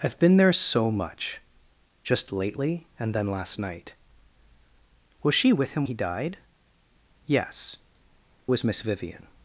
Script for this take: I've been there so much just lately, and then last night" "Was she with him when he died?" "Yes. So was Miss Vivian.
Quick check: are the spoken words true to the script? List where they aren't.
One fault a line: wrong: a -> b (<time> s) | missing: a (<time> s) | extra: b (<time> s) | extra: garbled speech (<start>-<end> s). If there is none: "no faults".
missing: when (5.8 s)
missing: So (7.8 s)